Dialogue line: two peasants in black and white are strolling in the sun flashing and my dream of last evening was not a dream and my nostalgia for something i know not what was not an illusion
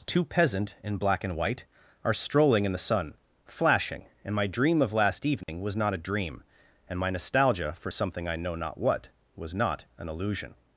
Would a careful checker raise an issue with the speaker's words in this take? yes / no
yes